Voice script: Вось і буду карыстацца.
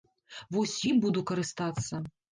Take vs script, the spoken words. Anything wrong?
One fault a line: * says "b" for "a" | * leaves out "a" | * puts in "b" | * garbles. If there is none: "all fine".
all fine